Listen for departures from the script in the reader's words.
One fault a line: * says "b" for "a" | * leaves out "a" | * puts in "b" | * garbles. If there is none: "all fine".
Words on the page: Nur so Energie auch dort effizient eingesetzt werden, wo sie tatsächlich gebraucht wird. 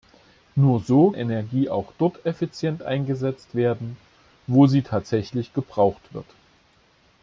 all fine